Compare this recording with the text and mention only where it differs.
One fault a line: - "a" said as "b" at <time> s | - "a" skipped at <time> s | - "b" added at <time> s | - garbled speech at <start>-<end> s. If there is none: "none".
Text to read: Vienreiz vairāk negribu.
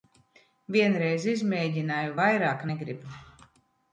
- "izmēģināju" added at 1.3 s